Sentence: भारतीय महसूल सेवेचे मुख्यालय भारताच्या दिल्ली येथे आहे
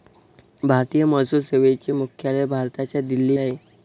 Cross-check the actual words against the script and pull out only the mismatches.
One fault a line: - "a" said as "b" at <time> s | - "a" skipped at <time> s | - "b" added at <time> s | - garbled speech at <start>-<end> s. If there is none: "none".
- "येथे" skipped at 3.4 s